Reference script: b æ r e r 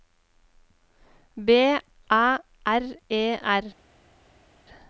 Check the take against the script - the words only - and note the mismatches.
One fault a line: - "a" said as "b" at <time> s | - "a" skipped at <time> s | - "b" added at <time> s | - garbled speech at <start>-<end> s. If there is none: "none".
none